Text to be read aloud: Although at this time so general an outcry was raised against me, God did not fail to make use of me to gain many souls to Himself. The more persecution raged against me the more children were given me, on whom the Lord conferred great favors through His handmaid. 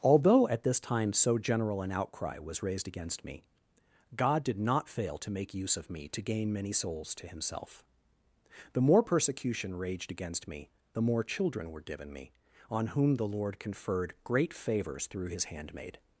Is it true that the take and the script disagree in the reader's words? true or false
false